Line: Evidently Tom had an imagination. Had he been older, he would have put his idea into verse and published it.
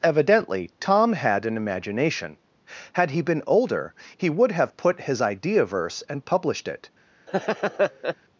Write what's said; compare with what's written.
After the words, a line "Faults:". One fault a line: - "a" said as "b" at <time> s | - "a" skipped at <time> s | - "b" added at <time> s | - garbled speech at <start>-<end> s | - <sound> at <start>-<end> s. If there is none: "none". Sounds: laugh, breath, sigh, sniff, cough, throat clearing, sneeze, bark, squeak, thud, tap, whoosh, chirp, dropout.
Evidently Tom had an imagination. Had he been older, he would have put his idea verse and published it.
Faults:
- "into" skipped at 5.6 s
- laugh at 7.3-8.2 s